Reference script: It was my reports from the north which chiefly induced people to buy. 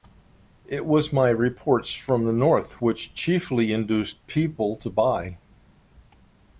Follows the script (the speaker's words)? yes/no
yes